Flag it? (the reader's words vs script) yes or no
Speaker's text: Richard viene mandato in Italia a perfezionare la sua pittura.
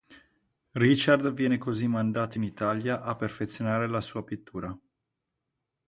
yes